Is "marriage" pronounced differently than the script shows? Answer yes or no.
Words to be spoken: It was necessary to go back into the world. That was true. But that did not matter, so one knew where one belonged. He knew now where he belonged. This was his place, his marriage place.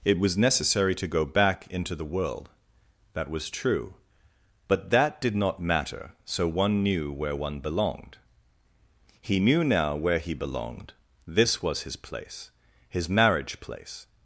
no